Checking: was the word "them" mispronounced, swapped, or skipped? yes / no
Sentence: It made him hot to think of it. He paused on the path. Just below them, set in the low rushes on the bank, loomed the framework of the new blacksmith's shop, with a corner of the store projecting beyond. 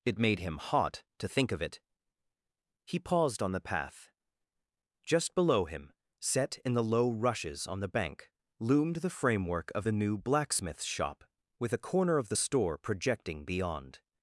yes